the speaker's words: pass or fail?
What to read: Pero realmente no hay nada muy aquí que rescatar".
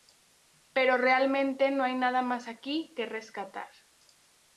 fail